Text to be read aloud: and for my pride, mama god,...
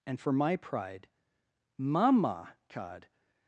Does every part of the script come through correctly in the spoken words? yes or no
yes